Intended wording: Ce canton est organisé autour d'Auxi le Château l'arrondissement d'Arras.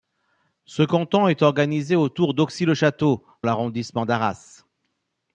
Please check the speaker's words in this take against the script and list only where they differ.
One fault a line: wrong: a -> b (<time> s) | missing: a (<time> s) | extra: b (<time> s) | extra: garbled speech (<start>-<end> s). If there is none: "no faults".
no faults